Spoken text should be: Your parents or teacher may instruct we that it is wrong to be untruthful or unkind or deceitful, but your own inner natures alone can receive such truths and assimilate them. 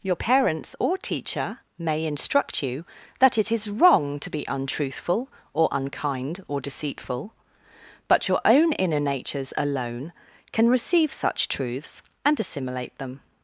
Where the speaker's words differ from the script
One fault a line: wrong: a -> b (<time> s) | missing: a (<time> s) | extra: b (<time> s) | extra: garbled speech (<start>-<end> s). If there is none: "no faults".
wrong: we -> you (2.6 s)